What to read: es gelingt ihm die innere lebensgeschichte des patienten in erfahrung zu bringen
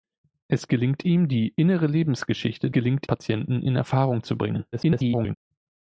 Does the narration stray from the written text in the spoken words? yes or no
yes